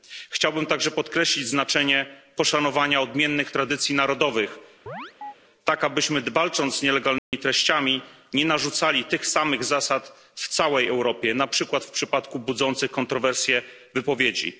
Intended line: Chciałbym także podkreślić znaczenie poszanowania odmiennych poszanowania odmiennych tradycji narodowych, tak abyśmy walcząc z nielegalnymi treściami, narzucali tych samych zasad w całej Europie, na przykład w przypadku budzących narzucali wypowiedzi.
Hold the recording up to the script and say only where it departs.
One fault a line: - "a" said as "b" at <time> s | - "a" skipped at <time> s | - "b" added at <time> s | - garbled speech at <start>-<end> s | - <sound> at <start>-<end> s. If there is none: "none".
- "poszanowania odmiennych" skipped at 3.5 s
- chirp at 4.9-5.3 s
- dropout at 7.2-7.3 s
- "nie" added at 8.3 s
- "narzucali" said as "kontrowersje" at 12.9 s